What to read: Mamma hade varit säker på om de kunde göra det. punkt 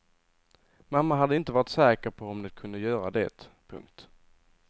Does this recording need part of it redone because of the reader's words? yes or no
yes